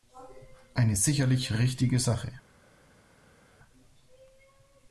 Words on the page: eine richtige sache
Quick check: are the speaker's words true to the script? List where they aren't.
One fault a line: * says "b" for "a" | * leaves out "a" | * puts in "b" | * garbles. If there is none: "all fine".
* puts in "sicherlich"